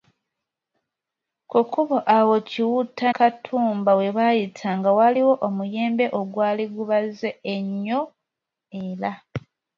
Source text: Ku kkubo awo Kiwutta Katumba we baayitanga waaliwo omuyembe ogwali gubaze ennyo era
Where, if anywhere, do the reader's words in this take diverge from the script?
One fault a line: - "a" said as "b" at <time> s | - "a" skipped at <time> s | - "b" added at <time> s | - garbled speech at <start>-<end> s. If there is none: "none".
none